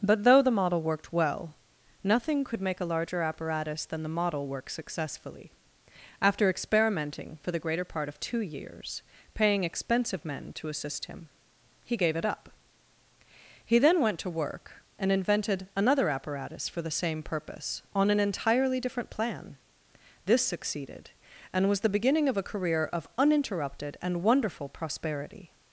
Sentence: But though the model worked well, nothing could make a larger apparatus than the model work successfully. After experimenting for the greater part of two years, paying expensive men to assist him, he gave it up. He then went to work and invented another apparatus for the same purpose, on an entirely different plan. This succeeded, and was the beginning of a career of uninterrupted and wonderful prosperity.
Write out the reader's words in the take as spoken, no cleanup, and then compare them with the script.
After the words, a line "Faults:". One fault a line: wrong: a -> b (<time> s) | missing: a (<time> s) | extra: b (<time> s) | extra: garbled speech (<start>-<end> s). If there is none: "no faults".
But though the model worked well, nothing could make a larger apparatus than the model work successfully. After experimenting for the greater part of two years, paying expensive men to assist him, he gave it up. He then went to work and invented another apparatus for the same purpose, on an entirely different plan. This succeeded, and was the beginning of a career of uninterrupted and wonderful prosperity.
Faults:
no faults